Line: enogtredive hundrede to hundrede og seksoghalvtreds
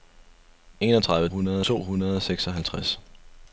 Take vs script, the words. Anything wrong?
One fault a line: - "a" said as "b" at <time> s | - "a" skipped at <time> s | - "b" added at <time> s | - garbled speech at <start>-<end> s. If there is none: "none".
none